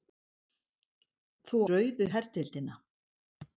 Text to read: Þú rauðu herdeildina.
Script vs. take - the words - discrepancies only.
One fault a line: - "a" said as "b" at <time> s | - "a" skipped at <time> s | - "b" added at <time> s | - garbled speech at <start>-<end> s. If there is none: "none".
none